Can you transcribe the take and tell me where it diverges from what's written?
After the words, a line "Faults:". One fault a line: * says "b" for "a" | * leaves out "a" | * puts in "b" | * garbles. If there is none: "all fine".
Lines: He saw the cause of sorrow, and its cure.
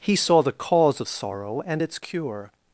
He saw the cause of sorrow, and its cure.
Faults:
all fine